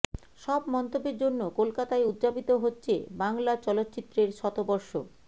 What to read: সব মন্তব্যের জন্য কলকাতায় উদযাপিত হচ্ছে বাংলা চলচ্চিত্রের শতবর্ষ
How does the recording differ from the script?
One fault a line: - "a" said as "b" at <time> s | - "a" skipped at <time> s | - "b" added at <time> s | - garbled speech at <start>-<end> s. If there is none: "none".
none